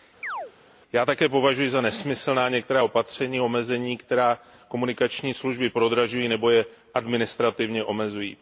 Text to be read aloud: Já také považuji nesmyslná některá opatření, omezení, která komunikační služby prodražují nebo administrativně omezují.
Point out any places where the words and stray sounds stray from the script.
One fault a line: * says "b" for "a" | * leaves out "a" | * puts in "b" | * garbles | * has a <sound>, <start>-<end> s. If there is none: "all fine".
* has a chirp, 0.2-0.5 s
* puts in "za"
* puts in "je"